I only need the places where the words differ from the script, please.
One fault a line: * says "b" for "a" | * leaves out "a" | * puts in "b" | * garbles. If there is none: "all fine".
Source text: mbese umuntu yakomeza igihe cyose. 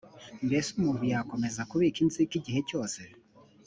* puts in "kubika inzika"